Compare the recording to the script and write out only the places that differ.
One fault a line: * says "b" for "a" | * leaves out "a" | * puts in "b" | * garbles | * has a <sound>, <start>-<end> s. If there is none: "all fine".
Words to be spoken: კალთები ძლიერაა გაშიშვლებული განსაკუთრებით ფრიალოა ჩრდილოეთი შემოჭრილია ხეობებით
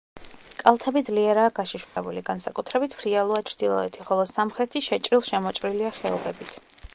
* has a dropout, 1.8-2.0 s
* puts in "ხოლო სამხრეთი შეჭრილ"